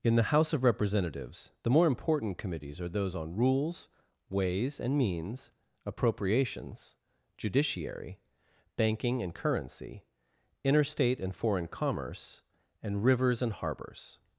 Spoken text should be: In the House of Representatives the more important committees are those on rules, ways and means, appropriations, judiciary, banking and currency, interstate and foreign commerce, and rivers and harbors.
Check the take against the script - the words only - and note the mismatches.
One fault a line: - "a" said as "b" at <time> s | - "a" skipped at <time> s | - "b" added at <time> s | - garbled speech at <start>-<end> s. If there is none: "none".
none